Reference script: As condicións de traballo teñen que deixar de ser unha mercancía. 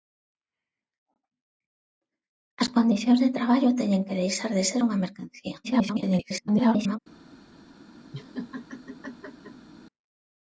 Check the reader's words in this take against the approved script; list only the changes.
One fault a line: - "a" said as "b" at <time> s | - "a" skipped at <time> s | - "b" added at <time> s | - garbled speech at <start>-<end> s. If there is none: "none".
- garbled speech at 5.6-7.0 s